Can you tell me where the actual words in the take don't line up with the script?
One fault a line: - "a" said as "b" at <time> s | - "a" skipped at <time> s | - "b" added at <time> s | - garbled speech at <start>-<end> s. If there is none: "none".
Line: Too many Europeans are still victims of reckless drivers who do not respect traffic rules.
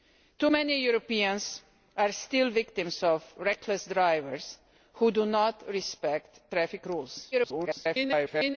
- garbled speech at 7.3-8.6 s